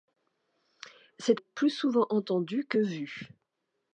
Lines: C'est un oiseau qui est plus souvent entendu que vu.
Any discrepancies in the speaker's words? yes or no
yes